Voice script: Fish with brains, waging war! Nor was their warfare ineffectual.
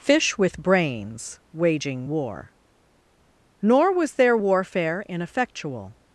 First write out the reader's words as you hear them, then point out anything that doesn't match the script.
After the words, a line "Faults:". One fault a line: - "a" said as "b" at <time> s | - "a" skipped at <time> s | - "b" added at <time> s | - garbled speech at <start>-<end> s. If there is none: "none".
Fish with brains, waging war! Nor was their warfare ineffectual.
Faults:
none